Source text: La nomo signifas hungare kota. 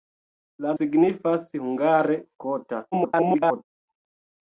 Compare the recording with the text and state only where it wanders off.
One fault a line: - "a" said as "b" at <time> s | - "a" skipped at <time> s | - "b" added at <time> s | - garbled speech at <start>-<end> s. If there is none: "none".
- "nomo" skipped at 0.7 s
- garbled speech at 2.9-3.6 s